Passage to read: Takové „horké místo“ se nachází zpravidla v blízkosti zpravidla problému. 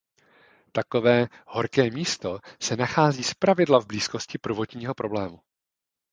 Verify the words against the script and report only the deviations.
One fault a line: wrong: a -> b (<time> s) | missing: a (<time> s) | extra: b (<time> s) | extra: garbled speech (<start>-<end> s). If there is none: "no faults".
wrong: zpravidla -> prvotního (4.4 s)